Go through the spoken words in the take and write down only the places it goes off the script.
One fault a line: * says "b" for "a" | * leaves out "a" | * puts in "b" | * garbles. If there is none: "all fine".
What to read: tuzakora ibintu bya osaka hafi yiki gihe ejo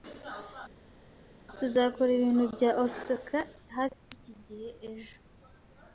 all fine